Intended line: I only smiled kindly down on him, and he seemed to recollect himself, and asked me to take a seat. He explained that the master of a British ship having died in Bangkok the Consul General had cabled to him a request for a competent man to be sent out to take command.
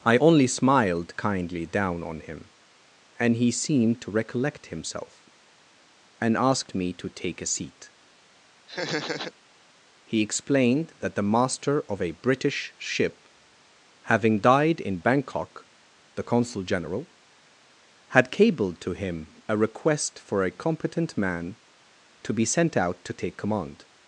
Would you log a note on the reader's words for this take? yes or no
no